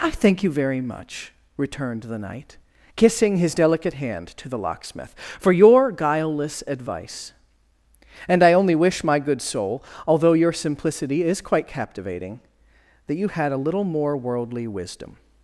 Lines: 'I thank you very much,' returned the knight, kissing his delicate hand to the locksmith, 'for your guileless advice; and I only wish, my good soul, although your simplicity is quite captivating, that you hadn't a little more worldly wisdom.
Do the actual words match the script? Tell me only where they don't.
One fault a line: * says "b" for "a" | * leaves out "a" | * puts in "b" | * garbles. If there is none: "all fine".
* says "had" for "hadn't"